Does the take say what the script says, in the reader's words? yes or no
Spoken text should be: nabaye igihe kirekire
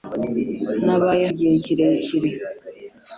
yes